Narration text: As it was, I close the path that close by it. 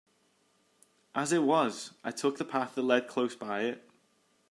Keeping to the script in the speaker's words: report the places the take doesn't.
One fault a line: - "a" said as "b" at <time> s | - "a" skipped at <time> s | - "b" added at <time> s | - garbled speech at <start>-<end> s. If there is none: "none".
- "close" said as "took" at 2.1 s
- "led" added at 2.8 s